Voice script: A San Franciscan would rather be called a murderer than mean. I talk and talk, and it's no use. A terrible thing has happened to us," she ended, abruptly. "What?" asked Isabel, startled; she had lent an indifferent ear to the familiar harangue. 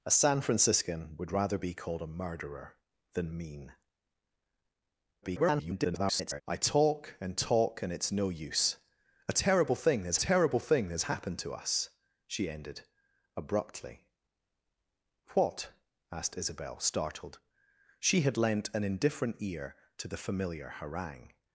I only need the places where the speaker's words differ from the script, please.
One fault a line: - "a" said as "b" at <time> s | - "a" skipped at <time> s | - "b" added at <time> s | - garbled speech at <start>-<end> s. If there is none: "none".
- garbled speech at 5.2-6.4 s
- "terrible thing has" added at 10.2 s